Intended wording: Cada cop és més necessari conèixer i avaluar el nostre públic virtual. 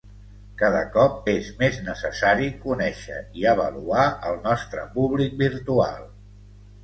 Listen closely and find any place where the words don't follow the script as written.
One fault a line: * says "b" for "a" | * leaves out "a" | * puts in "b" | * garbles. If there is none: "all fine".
all fine